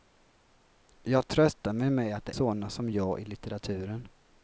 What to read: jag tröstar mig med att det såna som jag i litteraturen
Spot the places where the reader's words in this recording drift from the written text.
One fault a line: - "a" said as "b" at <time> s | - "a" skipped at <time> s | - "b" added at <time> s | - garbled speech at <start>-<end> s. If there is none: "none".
none